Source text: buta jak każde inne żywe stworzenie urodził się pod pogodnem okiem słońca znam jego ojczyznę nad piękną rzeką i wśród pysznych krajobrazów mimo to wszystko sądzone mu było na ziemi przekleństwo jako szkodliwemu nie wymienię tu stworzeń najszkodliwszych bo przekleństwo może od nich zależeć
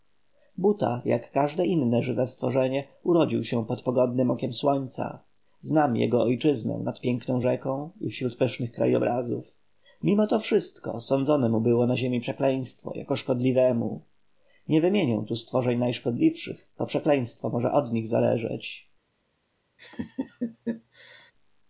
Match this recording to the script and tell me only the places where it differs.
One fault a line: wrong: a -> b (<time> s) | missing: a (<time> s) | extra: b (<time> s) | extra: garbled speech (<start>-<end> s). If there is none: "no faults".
no faults